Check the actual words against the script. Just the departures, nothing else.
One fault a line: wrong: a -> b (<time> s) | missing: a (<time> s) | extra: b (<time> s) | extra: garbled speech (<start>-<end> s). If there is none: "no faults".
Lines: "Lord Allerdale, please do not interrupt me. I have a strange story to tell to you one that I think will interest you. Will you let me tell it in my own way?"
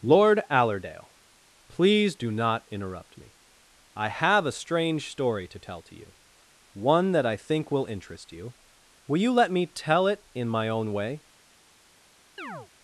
no faults